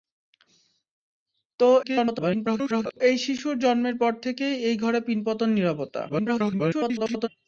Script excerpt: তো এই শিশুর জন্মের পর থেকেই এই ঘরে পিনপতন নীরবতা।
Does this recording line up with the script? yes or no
no